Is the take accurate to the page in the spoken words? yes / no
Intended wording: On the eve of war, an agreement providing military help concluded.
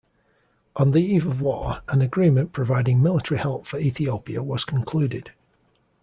no